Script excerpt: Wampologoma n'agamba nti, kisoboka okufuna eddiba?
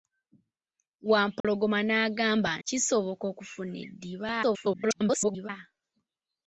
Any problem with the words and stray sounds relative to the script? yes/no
yes